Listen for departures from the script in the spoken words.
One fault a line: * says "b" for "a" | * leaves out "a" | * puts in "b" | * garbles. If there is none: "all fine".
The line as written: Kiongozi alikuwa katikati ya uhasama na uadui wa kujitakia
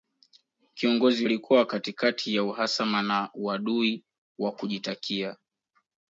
all fine